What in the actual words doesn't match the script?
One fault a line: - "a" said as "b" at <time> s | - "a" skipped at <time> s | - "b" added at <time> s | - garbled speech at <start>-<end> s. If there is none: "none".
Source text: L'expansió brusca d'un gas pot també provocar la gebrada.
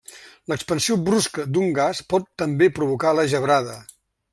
none